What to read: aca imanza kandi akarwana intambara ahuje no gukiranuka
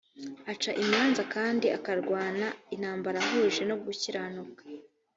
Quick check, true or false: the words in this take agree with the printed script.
true